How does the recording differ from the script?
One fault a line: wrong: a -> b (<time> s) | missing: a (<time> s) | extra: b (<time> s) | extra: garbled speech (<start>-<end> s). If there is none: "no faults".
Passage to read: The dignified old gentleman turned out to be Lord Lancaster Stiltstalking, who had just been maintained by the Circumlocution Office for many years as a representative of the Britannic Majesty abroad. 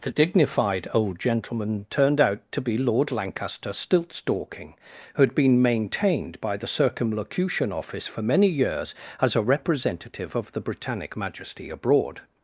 missing: just (5.3 s)